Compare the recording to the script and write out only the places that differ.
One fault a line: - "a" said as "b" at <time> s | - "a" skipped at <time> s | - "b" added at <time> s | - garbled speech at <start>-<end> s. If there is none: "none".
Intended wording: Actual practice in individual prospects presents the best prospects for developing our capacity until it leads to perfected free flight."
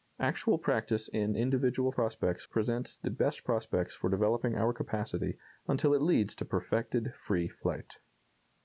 none